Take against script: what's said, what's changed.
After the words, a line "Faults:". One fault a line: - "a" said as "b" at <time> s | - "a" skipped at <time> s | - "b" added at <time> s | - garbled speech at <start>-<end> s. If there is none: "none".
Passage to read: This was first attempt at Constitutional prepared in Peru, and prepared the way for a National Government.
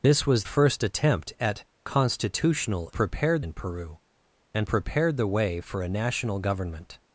This was first attempt at Constitutional prepared in Peru, and prepared the way for a National Government.
Faults:
none